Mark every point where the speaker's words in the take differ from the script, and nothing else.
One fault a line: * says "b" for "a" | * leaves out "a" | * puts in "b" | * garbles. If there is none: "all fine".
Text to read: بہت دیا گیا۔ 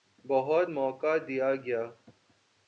* puts in "موقع"